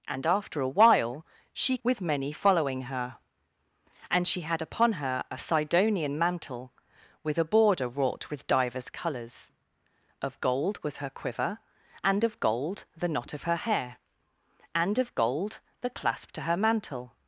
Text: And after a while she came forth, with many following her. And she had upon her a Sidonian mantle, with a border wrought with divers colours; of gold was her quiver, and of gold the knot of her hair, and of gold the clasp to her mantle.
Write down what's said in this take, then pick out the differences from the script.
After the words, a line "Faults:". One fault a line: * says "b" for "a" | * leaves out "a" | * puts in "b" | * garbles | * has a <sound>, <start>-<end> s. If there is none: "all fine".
And after a while she with many following her. And she had upon her a Sidonian mantle, with a border wrought with divers colours; of gold was her quiver, and of gold the knot of her hair, and of gold the clasp to her mantle.
Faults:
* leaves out "came forth"